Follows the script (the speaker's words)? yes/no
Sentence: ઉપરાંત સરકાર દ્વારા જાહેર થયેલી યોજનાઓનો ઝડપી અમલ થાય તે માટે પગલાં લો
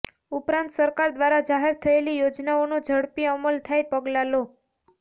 no